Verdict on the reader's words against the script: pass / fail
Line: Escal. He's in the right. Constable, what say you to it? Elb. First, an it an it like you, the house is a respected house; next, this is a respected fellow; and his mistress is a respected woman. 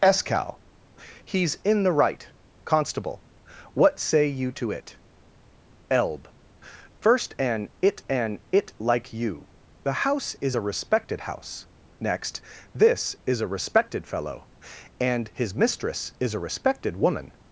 pass